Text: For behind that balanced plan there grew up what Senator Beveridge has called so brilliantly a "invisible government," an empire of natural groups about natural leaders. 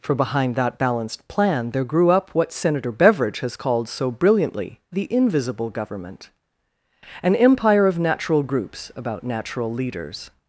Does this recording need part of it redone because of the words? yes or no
yes